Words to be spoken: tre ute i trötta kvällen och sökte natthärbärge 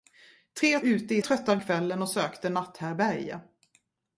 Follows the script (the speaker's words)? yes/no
yes